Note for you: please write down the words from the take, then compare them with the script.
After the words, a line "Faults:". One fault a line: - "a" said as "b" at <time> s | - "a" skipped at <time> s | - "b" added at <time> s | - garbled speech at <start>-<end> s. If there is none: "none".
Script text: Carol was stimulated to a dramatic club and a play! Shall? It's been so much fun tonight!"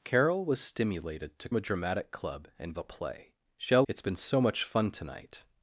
Carol was stimulated to a dramatic club and a play! Shall? It's been so much fun tonight!"
Faults:
none